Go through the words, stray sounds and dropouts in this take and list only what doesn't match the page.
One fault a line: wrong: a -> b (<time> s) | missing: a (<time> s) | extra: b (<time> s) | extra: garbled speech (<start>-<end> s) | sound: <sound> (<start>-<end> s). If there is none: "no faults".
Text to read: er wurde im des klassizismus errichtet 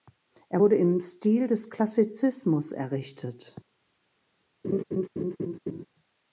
extra: stil (1.0 s)
sound: laugh (4.6-5.9 s)